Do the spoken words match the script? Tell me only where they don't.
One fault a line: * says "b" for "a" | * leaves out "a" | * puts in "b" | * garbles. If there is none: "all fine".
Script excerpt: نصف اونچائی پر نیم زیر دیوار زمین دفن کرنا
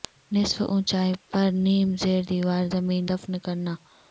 all fine